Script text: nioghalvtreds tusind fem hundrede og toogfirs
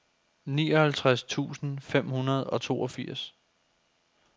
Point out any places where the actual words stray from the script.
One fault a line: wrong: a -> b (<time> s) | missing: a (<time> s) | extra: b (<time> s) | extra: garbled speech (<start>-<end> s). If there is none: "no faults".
no faults